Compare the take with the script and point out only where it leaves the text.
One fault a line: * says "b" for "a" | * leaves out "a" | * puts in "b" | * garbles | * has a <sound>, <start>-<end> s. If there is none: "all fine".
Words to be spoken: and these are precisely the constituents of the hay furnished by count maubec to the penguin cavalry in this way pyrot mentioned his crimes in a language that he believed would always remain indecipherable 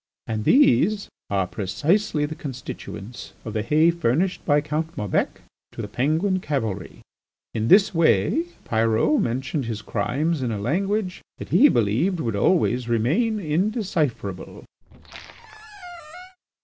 * has a squeak, 14.8-16.4 s